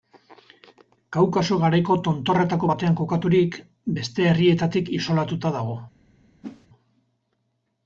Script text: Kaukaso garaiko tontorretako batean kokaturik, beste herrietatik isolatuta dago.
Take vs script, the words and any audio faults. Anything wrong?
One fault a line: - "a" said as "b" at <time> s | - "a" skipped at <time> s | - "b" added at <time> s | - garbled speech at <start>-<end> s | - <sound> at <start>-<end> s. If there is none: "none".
- whoosh at 6.4-6.7 s